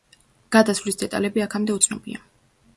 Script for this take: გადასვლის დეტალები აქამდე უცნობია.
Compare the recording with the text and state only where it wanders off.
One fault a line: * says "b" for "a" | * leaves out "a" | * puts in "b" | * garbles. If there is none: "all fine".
all fine